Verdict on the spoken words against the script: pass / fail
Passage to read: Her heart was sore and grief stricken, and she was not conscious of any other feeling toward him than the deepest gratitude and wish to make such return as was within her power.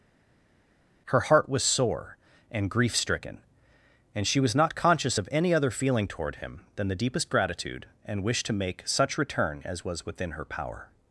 pass